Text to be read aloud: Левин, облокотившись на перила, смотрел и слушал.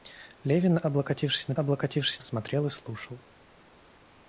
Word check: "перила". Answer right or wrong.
wrong